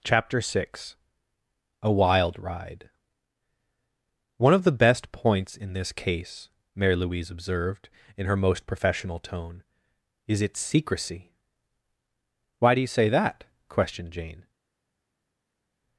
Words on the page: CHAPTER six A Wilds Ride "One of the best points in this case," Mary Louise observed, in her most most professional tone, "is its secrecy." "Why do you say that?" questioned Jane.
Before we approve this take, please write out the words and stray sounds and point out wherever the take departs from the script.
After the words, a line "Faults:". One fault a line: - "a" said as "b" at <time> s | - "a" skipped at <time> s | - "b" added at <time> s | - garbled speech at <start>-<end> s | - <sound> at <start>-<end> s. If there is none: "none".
CHAPTER six A Wild Ride "One of the best points in this case," Mary Louise observed, in her most professional tone, "is its secrecy." "Why do you say that?" questioned Jane.
Faults:
- "Wilds" said as "Wild" at 1.9 s
- "most" skipped at 8.7 s